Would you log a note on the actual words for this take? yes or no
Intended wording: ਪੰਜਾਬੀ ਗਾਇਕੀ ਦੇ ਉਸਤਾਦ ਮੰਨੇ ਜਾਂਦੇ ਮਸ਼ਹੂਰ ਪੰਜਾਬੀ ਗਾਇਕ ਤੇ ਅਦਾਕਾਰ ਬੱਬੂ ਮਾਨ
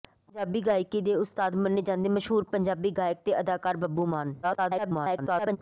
yes